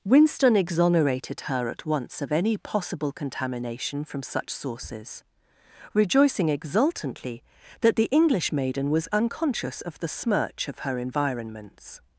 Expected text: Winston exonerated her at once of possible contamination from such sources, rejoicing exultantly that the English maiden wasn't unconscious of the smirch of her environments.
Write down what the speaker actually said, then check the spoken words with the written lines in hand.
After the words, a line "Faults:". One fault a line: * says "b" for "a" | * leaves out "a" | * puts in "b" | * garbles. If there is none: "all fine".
Winston exonerated her at once of any possible contamination from such sources, rejoicing exultantly that the English maiden was unconscious of the smirch of her environments.
Faults:
* puts in "any"
* says "was" for "wasn't"